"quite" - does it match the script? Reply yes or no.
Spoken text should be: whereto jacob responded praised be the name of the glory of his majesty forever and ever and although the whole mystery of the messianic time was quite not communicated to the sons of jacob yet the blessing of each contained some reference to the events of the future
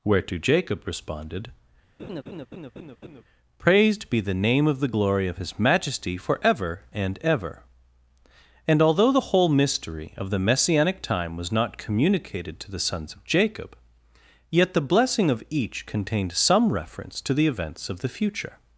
no